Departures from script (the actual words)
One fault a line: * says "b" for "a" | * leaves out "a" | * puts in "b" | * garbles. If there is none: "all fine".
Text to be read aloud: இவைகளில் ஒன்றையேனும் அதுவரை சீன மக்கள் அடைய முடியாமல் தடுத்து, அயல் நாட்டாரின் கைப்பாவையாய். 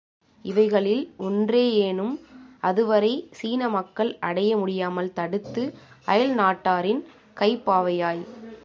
all fine